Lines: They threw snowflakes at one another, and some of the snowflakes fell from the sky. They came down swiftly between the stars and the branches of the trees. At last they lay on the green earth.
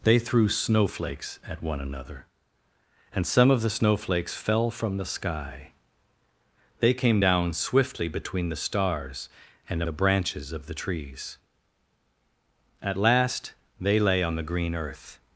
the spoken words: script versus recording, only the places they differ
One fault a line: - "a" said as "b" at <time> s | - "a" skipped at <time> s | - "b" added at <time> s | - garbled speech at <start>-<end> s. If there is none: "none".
none